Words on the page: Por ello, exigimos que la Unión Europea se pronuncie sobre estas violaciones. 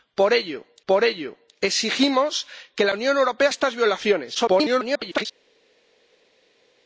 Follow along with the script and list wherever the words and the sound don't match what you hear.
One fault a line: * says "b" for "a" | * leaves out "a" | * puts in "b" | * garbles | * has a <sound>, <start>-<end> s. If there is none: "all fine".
* puts in "por ello"
* leaves out "se pronuncie sobre"
* garbles